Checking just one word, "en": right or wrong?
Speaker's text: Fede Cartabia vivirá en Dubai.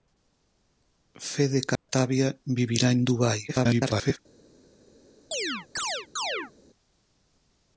right